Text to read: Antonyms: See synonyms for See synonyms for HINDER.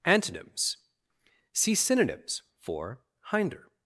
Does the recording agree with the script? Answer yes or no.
no